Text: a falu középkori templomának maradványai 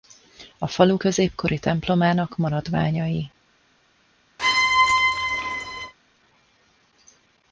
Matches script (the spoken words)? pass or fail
pass